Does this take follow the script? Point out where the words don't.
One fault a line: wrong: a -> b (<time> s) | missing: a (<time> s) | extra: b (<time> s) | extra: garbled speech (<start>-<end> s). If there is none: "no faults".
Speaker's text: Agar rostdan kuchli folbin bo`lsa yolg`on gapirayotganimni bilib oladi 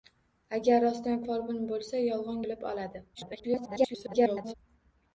missing: kuchli (1.2 s)
missing: gapirayotganimni (2.4 s)
extra: garbled speech (3.1-4.5 s)